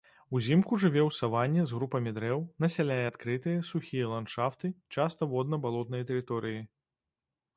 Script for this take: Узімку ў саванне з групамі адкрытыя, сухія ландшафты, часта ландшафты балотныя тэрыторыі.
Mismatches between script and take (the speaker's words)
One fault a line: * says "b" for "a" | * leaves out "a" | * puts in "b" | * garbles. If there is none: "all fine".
* puts in "жыве"
* puts in "дрэў насяляе"
* says "водна" for "ландшафты"